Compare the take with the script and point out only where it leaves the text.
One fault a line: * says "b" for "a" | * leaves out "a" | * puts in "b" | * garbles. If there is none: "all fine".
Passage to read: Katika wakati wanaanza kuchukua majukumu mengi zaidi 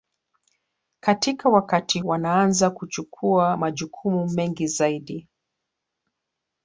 all fine